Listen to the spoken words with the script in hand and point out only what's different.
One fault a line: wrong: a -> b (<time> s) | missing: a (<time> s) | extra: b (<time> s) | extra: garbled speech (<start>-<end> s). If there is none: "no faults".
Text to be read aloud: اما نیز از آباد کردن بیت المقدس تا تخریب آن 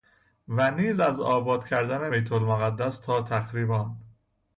wrong: اما -> و (0.5 s)